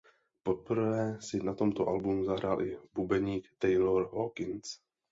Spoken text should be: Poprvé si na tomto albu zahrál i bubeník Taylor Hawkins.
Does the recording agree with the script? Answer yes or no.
yes